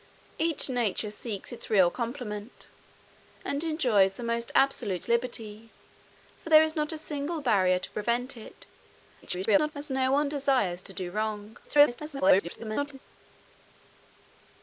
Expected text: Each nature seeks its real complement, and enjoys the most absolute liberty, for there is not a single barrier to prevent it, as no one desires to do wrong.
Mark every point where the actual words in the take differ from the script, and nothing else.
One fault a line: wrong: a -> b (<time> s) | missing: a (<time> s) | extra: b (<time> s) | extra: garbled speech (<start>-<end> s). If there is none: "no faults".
extra: garbled speech (9.2-9.7 s)
extra: garbled speech (11.6-13.0 s)